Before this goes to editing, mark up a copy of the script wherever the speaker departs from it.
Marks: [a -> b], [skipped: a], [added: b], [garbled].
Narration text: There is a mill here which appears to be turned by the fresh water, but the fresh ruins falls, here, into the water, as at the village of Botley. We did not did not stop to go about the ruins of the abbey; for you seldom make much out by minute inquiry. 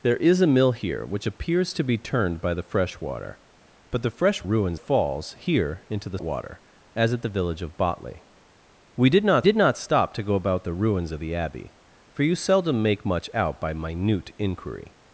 There is a mill here which appears to be turned by the fresh water, but the fresh ruins falls, here, into the water, as at the village of Botley. We did not did not stop to go about the ruins of the abbey; for you seldom make much out by minute inquiry.